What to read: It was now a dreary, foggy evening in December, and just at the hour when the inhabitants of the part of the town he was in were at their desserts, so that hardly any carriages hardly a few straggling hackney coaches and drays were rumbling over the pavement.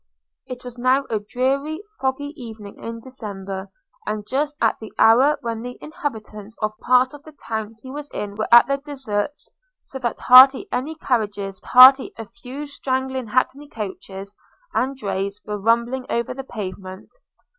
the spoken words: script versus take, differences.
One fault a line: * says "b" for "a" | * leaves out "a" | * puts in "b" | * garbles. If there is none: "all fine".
all fine